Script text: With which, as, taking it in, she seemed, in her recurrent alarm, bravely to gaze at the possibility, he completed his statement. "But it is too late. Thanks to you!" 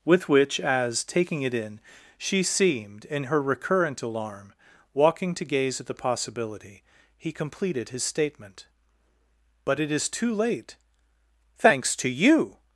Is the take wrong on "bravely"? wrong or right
wrong